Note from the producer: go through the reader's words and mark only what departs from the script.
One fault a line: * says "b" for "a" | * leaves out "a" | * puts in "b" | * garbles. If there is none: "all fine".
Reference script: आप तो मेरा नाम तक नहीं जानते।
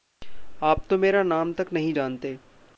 all fine